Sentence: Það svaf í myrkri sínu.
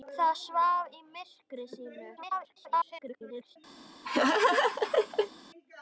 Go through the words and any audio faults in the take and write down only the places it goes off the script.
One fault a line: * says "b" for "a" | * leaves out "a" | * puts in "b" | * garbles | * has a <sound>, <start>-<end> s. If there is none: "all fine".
* garbles
* has a laugh, 4.0-5.3 s